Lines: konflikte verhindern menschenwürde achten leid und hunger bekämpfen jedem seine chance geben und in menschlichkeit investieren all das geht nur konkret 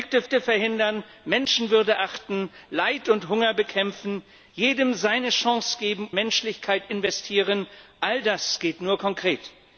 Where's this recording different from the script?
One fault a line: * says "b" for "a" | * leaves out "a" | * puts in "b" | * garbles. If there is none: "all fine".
* puts in "konflikte"
* leaves out "und in"